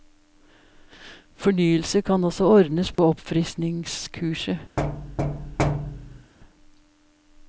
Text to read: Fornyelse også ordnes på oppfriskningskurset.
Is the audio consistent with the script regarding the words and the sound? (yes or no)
no